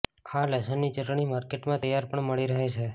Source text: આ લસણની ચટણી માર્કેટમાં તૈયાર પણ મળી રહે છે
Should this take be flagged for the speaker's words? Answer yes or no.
no